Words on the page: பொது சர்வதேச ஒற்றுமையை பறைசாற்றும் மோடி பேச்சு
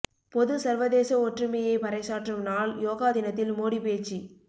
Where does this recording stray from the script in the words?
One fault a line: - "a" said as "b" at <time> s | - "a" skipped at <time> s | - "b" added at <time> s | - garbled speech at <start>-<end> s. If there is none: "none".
- "நாள் யோகா தினத்தில்" added at 2.4 s